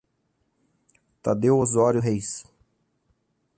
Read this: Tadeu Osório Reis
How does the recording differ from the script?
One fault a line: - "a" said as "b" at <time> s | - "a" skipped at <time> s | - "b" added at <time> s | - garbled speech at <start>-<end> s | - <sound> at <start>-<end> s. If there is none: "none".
none